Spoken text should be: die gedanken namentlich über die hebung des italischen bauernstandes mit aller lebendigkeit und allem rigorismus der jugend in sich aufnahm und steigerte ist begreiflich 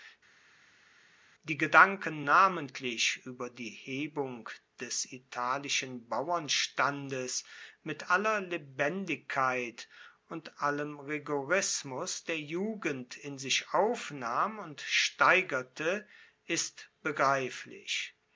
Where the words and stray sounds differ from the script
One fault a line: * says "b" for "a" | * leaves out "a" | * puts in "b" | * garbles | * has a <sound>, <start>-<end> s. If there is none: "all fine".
all fine